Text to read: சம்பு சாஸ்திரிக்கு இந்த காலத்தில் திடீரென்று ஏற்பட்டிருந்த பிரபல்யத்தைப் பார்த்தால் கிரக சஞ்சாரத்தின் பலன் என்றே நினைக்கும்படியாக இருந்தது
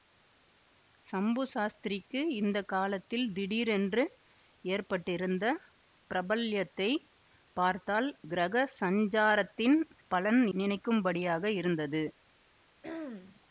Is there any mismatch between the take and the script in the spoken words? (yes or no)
yes